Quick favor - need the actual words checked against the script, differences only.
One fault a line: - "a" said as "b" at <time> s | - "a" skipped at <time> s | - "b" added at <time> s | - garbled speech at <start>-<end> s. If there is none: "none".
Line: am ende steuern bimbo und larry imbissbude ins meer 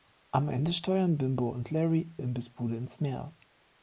none